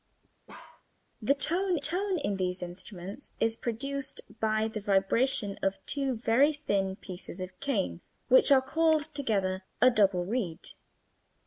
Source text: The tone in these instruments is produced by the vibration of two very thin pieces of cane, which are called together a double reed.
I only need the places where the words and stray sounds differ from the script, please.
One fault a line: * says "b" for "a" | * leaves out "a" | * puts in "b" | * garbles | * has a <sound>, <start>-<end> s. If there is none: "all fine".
* has a bark, 0.5-0.8 s
* puts in "tone"